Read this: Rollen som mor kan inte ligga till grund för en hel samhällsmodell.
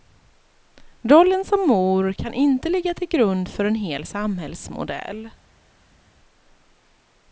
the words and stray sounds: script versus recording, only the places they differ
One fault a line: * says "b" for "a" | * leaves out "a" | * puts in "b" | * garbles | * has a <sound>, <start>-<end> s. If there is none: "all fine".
all fine